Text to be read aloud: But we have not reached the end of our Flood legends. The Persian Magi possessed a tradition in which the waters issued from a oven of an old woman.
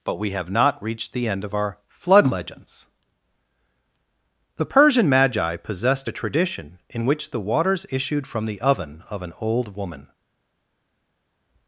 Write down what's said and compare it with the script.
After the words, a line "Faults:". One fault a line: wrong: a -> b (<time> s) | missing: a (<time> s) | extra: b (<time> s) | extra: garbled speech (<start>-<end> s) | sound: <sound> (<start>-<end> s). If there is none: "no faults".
But we have not reached the end of our Flood legends. The Persian Magi possessed a tradition in which the waters issued from the oven of an old woman.
Faults:
wrong: a -> the (8.4 s)